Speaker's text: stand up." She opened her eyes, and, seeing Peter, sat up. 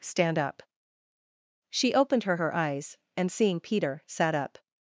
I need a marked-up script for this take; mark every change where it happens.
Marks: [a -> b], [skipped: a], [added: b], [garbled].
stand up." She opened her [added: her] eyes, and, seeing Peter, sat up.